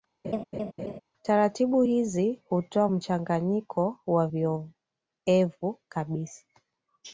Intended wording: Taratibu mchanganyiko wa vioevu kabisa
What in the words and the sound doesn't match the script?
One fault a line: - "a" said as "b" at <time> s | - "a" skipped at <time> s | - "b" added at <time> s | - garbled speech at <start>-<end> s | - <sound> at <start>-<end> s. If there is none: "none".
- laugh at 0.2-1.0 s
- "hizi hutoa" added at 1.8 s